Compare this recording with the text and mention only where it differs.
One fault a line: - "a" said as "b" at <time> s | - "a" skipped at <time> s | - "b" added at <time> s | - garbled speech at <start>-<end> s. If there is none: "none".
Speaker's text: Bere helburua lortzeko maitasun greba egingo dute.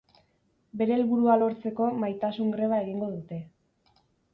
none